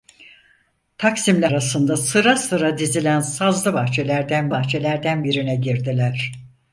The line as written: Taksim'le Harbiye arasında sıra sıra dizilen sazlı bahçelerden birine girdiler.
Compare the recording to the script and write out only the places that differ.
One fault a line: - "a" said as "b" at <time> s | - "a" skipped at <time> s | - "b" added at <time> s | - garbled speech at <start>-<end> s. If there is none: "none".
- "Harbiye" skipped at 1.5 s
- "bahçelerden" added at 4.5 s